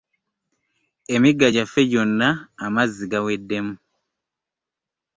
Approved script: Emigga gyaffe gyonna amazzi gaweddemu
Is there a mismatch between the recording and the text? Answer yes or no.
no